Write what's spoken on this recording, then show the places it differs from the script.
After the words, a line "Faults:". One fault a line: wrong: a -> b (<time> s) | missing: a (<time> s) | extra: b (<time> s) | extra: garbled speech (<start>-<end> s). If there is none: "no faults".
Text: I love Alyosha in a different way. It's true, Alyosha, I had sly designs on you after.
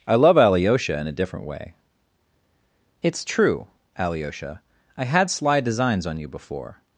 I love Alyosha in a different way. It's true, Alyosha, I had sly designs on you before.
Faults:
wrong: after -> before (6.3 s)